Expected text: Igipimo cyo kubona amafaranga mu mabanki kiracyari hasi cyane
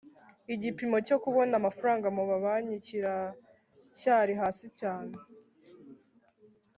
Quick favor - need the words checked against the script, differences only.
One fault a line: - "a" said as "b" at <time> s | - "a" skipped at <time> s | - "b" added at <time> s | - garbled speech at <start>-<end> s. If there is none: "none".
none